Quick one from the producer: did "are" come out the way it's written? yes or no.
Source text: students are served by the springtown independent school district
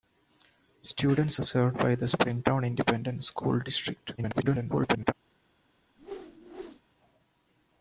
no